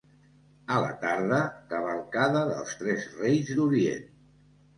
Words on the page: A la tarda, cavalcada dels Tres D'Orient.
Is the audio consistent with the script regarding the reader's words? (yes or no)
no